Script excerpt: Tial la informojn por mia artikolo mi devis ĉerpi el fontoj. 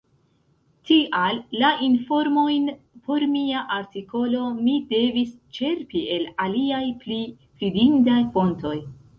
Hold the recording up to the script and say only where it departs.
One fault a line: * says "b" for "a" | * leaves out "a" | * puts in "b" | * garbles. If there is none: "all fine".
* puts in "aliaj pli fidindaj"